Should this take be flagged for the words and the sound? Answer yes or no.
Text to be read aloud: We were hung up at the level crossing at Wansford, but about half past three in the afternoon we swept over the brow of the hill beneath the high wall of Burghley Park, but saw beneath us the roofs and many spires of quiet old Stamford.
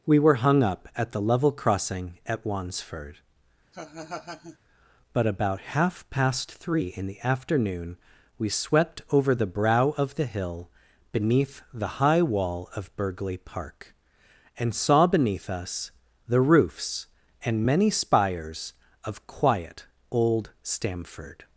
yes